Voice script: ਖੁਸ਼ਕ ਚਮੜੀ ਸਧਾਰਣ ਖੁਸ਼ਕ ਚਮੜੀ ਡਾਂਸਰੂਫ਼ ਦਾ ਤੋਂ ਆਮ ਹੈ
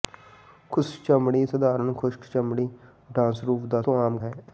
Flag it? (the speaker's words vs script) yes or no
no